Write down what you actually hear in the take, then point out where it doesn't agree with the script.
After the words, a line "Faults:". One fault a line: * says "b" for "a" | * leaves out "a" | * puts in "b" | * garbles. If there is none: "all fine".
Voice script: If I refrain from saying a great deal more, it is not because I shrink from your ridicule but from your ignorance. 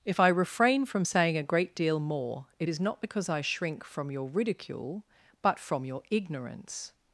If I refrain from saying a great deal more, it is not because I shrink from your ridicule but from your ignorance.
Faults:
all fine